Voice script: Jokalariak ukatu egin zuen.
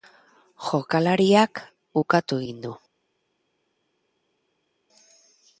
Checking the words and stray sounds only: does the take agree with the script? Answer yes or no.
no